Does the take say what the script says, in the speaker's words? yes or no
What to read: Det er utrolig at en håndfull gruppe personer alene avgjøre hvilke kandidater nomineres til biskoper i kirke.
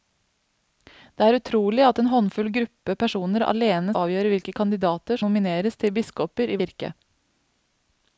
yes